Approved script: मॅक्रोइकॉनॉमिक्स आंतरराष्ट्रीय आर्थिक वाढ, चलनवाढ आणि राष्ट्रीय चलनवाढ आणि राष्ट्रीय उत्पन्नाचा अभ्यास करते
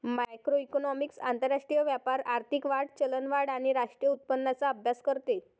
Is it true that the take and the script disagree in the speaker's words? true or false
true